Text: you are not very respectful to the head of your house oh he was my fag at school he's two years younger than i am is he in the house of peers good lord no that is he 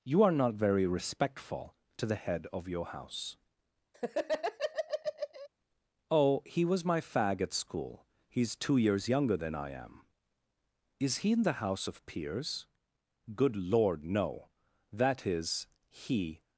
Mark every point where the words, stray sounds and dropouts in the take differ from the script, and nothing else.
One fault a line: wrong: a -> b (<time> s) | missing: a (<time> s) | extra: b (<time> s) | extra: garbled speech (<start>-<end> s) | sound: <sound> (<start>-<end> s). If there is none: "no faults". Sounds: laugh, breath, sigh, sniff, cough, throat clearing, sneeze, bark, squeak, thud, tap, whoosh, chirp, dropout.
sound: laugh (3.9-5.5 s)